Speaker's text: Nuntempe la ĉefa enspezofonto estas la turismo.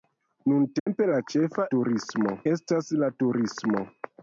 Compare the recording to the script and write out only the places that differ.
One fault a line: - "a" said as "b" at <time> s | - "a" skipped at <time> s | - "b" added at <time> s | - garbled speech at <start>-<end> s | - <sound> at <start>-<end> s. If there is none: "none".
- dropout at 0.8-0.9 s
- "enspezofonto" said as "turismo" at 1.7 s